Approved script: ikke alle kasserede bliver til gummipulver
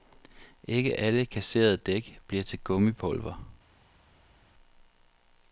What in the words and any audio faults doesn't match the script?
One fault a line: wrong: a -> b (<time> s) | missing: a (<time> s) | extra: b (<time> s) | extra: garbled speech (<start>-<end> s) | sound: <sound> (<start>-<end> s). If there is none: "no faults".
extra: dæk (1.8 s)